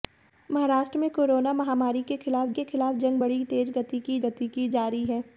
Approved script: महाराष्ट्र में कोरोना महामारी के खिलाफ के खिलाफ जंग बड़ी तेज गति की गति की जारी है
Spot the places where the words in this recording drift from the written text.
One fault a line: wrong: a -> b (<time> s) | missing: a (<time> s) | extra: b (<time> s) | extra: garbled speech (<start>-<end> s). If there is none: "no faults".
no faults